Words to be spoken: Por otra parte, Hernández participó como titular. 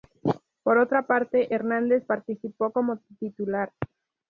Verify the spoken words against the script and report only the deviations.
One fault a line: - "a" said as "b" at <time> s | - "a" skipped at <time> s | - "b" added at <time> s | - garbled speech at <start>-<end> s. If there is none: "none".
none